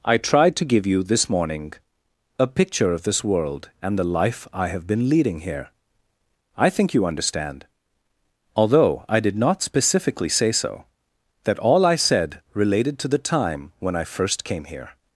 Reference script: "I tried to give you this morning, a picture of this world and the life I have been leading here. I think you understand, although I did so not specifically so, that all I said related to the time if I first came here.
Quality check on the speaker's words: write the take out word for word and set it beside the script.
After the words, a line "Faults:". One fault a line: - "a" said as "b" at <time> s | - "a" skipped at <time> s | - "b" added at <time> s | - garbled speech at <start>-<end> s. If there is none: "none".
"I tried to give you this morning, a picture of this world and the life I have been leading here. I think you understand, although I did not specifically say so, that all I said related to the time when I first came here.
Faults:
- "so" skipped at 9.3 s
- "say" added at 10.3 s
- "if" said as "when" at 13.8 s